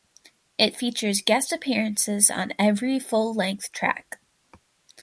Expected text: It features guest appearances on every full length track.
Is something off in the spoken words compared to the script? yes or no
no